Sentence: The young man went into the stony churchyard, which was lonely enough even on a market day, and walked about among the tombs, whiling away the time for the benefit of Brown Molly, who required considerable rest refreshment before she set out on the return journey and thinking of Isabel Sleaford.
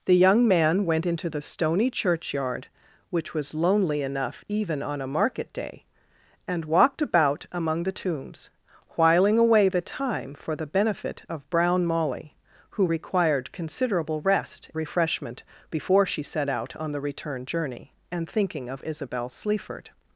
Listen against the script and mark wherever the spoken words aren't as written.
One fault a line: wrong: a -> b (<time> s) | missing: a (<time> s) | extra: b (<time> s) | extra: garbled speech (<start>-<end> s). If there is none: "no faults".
no faults